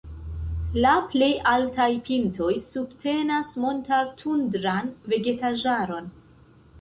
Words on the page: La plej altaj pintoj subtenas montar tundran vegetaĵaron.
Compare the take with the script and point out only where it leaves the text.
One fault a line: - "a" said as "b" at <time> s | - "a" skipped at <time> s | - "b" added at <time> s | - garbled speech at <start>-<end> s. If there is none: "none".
none